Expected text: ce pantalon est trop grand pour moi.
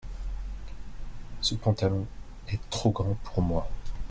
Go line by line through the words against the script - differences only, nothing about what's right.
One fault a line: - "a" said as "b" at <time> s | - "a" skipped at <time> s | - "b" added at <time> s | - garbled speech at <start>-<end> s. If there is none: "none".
none